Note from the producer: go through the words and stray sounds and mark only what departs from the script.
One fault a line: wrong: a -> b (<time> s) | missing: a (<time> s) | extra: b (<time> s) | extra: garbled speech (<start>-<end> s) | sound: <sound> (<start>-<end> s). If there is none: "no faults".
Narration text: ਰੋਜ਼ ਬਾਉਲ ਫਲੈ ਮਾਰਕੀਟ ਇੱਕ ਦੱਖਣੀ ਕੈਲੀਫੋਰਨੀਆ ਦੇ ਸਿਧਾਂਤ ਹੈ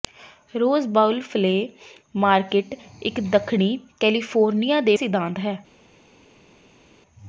no faults